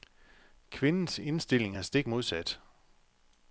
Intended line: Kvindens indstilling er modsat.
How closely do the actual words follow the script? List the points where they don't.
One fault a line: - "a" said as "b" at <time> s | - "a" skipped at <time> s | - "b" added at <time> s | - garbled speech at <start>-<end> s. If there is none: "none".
- "stik" added at 1.8 s